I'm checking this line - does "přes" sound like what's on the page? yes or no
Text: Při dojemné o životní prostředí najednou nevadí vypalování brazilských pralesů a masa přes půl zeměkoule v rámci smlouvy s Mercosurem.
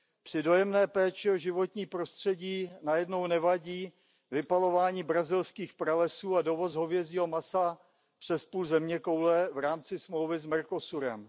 yes